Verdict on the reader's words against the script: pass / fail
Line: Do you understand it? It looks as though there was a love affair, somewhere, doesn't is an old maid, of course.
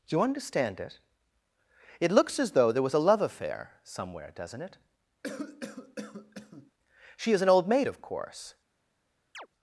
fail